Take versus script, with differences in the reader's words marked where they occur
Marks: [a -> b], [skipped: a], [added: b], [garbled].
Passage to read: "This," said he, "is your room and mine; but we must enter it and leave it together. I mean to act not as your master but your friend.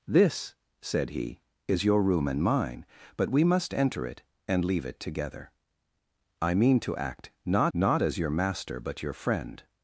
"This," said he, "is your room and mine; but we must enter it and leave it together. I mean to act not [added: not] as your master but your friend.